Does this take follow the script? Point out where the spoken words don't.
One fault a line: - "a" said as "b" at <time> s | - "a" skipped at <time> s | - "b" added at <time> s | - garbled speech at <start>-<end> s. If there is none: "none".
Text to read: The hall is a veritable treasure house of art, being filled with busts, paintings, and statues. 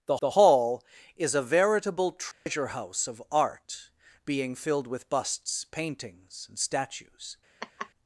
- "the" added at 0.2 s